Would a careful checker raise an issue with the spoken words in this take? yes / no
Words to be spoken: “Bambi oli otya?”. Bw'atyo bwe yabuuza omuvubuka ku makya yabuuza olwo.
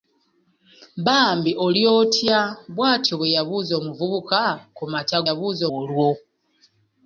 no